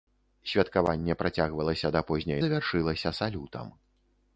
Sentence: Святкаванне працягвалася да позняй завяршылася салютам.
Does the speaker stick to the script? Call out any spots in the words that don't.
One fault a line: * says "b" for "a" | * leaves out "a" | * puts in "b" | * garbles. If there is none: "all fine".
all fine